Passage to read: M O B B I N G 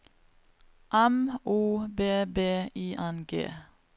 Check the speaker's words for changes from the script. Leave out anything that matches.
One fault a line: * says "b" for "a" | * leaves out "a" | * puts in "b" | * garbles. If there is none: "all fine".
all fine